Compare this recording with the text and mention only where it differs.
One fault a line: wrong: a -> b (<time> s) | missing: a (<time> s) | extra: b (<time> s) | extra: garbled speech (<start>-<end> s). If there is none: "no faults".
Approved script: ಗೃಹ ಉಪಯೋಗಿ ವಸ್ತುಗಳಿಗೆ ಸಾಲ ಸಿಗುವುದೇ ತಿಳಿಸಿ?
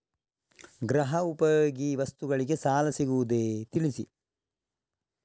no faults